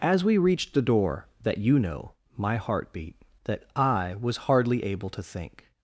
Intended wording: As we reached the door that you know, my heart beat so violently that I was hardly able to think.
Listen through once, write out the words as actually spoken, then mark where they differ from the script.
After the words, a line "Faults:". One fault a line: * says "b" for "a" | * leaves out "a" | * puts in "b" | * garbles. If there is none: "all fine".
As we reached the door that you know, my heart beat that I was hardly able to think.
Faults:
* leaves out "so violently"